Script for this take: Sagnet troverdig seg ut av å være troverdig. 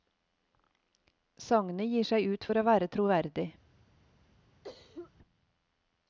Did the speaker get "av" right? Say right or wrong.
wrong